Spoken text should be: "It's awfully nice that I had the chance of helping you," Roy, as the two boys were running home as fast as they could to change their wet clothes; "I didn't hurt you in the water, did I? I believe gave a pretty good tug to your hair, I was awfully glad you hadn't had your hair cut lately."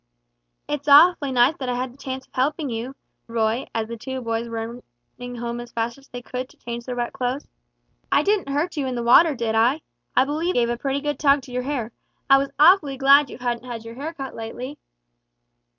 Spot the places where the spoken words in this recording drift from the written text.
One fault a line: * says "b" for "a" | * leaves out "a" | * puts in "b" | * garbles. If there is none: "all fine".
all fine